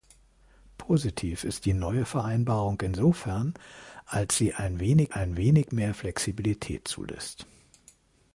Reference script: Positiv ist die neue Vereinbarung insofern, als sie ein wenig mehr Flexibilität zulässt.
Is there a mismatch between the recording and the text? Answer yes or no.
yes